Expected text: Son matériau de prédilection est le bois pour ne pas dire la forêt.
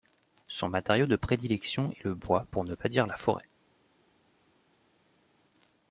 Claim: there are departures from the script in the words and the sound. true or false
false